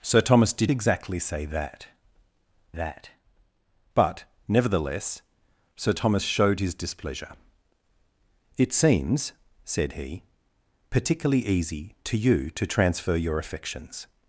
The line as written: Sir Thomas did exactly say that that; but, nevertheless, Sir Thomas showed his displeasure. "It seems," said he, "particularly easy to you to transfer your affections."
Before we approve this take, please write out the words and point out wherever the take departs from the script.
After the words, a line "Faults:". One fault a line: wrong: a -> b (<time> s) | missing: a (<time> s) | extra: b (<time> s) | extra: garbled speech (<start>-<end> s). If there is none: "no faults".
Sir Thomas did exactly say that that; but, nevertheless, Sir Thomas showed his displeasure. "It seems," said he, "particularly easy to you to transfer your affections."
Faults:
no faults